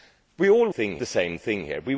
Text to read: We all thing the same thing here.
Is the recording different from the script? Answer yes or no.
no